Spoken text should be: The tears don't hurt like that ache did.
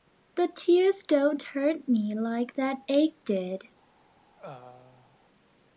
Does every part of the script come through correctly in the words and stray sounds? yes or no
no